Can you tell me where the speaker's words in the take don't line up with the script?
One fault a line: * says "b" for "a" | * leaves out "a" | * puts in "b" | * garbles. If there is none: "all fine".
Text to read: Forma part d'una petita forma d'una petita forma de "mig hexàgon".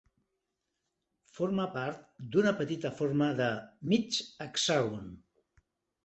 * leaves out "d'una petita forma"